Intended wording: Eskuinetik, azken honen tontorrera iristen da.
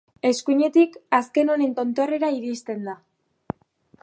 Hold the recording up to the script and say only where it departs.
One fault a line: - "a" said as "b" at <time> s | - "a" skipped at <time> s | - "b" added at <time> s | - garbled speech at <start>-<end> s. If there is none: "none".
none